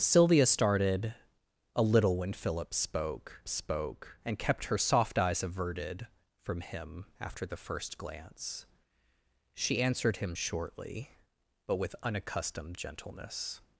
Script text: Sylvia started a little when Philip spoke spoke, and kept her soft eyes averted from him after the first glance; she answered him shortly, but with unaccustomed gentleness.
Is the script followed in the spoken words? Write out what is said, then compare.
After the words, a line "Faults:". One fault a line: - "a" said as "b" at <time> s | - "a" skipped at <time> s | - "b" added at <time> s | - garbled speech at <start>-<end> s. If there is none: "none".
Sylvia started a little when Philip spoke spoke, and kept her soft eyes averted from him after the first glance; she answered him shortly, but with unaccustomed gentleness.
Faults:
none